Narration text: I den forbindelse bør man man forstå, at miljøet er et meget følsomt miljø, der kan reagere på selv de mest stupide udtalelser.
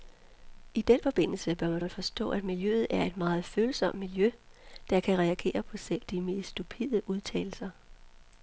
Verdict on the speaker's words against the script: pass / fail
pass